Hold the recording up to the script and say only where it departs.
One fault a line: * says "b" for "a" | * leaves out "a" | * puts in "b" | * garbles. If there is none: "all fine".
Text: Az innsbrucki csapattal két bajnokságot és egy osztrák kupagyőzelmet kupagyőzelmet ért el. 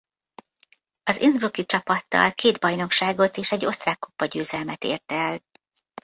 * leaves out "kupagyőzelmet"